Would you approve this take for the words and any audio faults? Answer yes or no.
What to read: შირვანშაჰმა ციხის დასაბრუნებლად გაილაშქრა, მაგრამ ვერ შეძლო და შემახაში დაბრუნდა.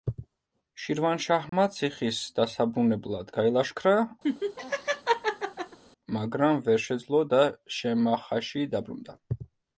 no